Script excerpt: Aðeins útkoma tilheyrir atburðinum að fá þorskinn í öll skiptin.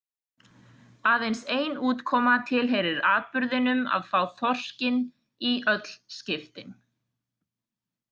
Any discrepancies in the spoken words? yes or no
yes